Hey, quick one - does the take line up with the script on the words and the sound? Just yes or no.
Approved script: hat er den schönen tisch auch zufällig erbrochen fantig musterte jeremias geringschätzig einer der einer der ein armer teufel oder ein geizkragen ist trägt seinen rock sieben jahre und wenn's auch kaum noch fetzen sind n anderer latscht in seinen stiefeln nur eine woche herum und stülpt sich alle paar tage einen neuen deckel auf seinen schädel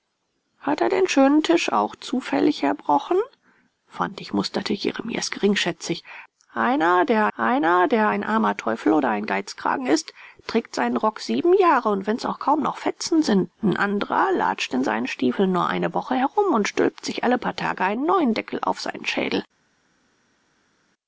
yes